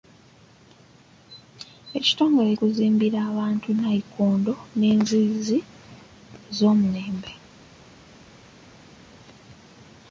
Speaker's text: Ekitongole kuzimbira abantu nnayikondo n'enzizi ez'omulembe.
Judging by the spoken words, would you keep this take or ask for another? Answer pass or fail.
pass